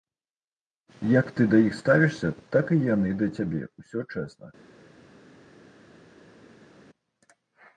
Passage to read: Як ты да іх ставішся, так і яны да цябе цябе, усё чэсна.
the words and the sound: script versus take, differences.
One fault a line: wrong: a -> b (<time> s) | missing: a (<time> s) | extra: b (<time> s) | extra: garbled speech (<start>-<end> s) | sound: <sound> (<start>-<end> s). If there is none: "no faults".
missing: цябе (3.6 s)